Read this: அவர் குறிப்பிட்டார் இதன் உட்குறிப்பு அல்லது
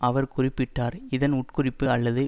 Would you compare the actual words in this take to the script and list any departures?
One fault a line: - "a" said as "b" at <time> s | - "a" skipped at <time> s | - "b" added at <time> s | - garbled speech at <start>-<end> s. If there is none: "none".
none